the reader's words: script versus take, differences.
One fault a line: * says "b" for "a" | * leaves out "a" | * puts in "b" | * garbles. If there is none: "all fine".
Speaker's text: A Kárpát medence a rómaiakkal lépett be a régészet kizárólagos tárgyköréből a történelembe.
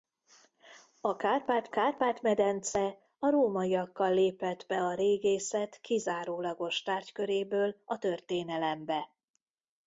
* puts in "Kárpát"